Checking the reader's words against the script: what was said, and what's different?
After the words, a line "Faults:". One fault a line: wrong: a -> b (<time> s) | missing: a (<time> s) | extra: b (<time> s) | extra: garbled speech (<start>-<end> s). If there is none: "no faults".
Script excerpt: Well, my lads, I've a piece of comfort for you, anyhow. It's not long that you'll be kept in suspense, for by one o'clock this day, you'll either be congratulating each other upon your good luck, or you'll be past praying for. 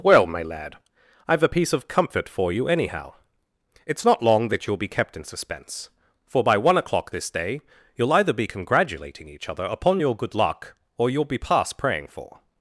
Well, my lad, I've a piece of comfort for you, anyhow. It's not long that you'll be kept in suspense, for by one o'clock this day, you'll either be congratulating each other upon your good luck, or you'll be past praying for.
Faults:
wrong: lads -> lad (0.4 s)